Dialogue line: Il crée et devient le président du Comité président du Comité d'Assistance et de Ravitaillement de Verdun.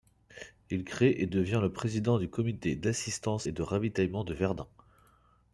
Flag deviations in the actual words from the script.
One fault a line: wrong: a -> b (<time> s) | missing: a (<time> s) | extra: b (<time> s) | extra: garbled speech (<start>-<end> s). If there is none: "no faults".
missing: président du Comité (2.8 s)